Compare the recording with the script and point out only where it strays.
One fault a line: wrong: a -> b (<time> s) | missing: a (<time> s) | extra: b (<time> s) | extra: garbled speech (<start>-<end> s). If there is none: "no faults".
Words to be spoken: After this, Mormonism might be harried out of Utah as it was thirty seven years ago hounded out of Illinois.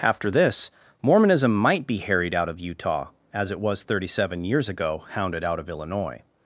no faults